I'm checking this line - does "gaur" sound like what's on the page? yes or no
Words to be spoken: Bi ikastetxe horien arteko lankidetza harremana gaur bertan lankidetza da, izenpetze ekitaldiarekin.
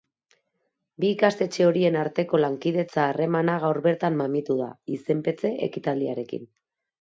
yes